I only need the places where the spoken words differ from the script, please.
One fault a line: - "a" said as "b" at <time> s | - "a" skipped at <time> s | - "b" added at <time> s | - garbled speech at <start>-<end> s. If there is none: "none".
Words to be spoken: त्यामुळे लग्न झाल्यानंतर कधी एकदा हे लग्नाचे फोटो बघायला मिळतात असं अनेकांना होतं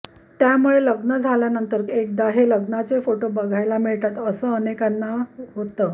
- "कधी" skipped at 1.8 s